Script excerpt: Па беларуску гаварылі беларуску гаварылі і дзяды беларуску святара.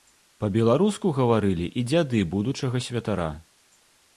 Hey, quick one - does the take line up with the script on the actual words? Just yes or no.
no